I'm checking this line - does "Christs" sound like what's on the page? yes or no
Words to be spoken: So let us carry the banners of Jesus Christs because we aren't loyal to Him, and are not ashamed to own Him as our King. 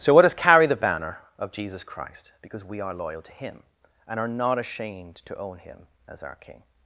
no